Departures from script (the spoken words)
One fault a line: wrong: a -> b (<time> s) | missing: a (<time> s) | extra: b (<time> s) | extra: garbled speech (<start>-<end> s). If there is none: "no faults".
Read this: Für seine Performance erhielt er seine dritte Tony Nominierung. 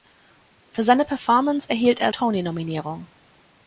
missing: seine dritte (2.1 s)